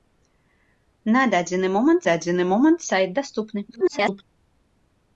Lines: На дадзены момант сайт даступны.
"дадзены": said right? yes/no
yes